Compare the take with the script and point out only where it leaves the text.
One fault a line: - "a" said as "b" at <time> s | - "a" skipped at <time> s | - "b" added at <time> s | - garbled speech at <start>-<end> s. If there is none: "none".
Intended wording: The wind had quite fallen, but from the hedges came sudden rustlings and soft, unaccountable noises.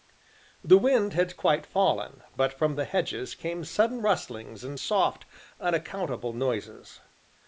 none